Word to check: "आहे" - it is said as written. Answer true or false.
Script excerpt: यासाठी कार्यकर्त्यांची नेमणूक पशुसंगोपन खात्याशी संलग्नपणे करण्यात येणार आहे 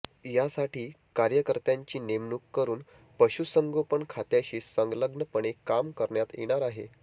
true